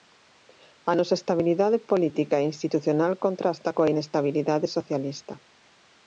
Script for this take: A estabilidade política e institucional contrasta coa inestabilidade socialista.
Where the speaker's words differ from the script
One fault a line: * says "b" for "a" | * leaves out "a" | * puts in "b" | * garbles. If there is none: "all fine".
* puts in "nosa"